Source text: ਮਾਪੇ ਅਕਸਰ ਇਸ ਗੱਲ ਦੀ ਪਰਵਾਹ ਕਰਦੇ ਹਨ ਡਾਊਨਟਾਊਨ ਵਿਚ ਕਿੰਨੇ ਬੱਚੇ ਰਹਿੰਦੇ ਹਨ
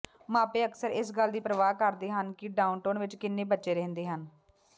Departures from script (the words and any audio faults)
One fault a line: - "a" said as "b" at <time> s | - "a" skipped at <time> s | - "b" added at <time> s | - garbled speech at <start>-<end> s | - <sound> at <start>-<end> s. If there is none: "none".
- "ਕਿ" added at 2.3 s